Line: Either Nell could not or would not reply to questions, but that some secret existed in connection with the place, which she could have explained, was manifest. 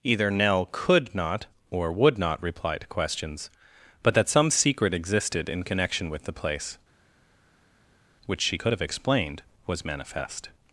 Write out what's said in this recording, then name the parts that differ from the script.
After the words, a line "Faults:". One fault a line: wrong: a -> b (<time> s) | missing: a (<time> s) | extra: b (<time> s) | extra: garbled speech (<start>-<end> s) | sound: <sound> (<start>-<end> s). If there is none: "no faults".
Either Nell could not or would not reply to questions, but that some secret existed in connection with the place, which she could have explained, was manifest.
Faults:
no faults